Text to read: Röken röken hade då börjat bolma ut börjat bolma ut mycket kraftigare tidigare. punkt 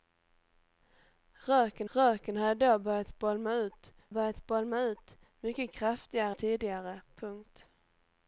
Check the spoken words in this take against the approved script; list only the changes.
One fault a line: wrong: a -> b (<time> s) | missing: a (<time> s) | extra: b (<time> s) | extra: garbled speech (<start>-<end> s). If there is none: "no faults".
no faults